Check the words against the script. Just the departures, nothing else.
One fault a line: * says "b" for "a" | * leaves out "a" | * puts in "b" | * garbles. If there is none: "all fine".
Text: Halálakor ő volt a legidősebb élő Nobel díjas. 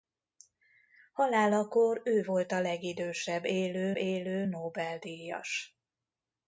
* puts in "élő"